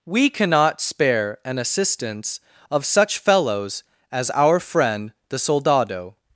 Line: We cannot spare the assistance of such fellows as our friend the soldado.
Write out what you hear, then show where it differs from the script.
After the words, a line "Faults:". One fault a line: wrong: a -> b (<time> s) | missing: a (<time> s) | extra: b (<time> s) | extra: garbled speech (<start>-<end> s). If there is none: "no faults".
We cannot spare an assistance of such fellows as our friend the soldado.
Faults:
wrong: the -> an (1.4 s)